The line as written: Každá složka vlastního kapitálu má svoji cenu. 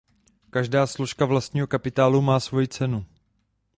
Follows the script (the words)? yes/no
yes